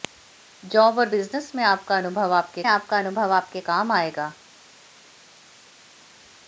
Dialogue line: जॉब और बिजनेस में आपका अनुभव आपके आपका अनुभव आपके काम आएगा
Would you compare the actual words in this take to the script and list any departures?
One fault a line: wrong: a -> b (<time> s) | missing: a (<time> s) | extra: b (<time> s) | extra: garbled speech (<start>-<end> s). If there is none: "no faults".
no faults